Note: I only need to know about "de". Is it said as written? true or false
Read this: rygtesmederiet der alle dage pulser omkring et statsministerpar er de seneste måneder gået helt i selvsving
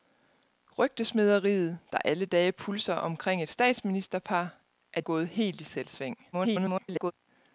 false